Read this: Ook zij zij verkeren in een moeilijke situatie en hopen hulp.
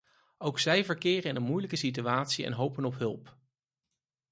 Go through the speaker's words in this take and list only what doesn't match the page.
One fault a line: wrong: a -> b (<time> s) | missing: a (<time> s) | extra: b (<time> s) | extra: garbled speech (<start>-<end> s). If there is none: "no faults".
missing: zij (0.8 s)
extra: op (2.8 s)